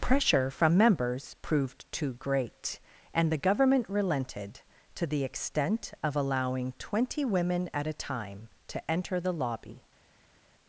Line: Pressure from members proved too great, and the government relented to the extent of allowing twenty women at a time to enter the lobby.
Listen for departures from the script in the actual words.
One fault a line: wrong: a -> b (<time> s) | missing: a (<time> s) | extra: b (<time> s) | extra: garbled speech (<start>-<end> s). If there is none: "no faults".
no faults